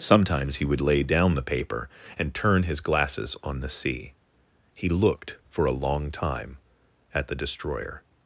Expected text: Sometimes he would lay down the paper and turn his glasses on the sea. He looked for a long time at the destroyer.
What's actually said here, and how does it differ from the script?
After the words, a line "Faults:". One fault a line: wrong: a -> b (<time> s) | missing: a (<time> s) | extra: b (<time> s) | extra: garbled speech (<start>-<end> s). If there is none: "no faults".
Sometimes he would lay down the paper and turn his glasses on the sea. He looked for a long time at the destroyer.
Faults:
no faults